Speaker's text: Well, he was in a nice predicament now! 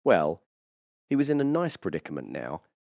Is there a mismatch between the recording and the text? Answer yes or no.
no